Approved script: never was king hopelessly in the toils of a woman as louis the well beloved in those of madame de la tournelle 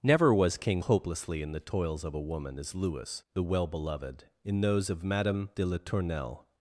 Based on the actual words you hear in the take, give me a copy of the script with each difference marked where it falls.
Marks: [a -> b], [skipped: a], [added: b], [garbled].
never was king hopelessly in the toils of a woman as louis the well beloved in those of madame de la tournelle